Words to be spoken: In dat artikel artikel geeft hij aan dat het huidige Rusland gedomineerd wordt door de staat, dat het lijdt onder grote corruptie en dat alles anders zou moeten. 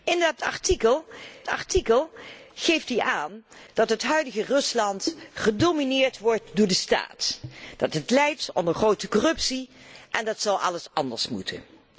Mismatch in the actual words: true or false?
false